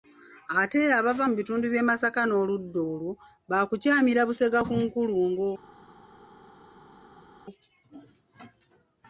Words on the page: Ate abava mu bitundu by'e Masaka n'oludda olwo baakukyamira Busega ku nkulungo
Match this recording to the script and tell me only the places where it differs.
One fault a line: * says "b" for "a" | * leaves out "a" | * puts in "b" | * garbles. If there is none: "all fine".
all fine